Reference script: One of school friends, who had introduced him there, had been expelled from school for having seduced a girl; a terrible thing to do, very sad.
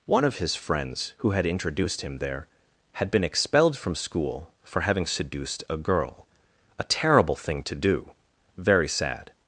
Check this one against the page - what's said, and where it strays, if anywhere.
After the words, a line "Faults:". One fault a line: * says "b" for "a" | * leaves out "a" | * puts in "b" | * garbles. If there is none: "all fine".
One of his friends, who had introduced him there, had been expelled from school for having seduced a girl; a terrible thing to do, very sad.
Faults:
* says "his" for "school"